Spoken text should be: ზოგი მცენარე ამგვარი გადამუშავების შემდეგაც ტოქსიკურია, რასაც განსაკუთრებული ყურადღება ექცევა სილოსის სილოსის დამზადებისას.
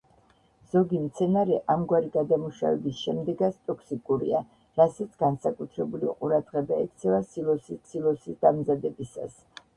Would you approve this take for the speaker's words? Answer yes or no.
yes